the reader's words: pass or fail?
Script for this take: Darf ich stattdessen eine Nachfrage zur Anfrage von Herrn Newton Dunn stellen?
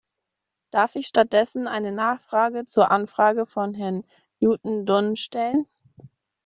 pass